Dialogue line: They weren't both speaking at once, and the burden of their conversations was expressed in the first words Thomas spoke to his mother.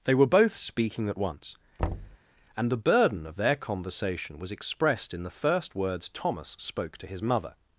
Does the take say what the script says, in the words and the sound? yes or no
no